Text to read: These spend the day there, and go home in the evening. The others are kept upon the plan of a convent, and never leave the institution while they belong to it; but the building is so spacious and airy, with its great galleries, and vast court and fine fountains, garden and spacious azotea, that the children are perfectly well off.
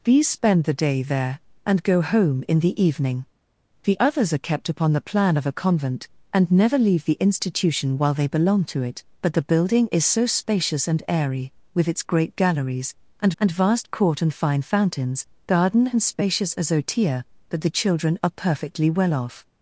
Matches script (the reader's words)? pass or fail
fail